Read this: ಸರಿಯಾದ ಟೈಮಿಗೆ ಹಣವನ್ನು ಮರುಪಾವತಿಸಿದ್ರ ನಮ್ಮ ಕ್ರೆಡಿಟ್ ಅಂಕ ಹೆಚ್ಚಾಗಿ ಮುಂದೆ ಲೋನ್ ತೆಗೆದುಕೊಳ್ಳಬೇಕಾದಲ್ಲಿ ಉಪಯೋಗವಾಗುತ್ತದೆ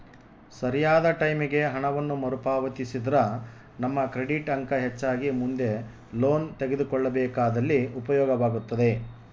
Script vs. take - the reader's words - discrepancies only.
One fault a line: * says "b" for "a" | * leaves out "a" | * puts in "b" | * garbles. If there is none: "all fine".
all fine